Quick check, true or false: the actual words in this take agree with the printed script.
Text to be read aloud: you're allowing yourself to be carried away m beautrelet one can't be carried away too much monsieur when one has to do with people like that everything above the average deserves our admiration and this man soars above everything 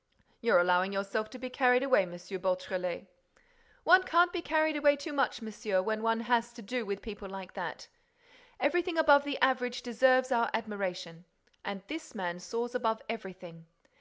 true